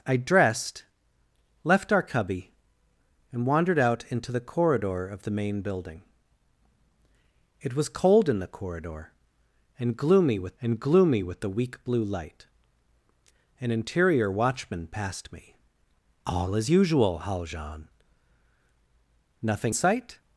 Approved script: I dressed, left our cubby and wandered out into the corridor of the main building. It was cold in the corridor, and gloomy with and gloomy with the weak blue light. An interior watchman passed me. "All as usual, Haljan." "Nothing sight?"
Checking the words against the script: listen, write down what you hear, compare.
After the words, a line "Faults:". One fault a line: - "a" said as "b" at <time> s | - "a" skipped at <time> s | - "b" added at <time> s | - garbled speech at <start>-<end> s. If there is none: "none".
I dressed, left our cubby and wandered out into the corridor of the main building. It was cold in the corridor, and gloomy with and gloomy with the weak blue light. An interior watchman passed me. "All as usual, Haljan." "Nothing sight?"
Faults:
none